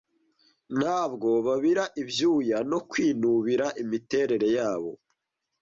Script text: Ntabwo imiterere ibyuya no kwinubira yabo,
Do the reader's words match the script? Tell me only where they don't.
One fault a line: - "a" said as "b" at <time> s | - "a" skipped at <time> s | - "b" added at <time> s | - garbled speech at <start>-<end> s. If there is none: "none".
- "imiterere" said as "babira" at 1.4 s
- "imiterere" added at 3.8 s